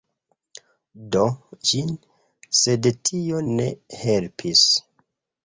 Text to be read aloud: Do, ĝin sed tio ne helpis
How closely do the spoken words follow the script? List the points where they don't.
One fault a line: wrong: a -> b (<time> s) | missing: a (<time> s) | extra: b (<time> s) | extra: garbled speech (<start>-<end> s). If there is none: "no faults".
no faults